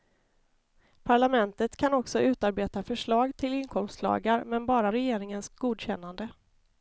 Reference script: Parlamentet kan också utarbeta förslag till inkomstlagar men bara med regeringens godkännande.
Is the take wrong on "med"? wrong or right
wrong